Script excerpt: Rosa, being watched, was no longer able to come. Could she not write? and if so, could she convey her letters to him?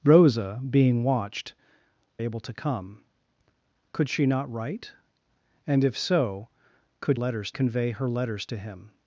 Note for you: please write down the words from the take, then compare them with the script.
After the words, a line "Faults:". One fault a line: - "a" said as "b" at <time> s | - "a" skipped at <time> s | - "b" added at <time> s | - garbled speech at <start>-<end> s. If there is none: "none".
Rosa, being watched, able to come. Could she not write? and if so, could letters convey her letters to him?
Faults:
- "was no longer" skipped at 1.5 s
- "she" said as "letters" at 7.1 s